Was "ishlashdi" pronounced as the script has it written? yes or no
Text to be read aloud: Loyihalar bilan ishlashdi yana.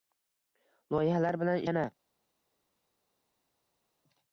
no